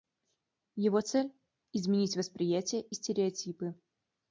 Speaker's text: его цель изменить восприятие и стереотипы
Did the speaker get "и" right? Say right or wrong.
right